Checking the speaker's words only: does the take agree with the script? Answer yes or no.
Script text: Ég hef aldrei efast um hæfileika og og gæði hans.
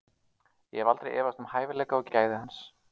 yes